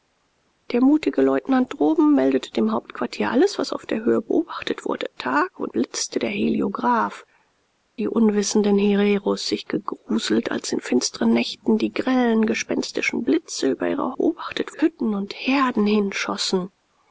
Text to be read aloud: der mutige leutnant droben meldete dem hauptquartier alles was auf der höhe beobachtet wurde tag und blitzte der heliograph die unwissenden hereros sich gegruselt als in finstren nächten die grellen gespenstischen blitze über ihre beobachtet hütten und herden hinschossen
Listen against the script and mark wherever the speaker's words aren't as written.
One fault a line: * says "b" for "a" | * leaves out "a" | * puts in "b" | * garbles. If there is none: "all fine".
all fine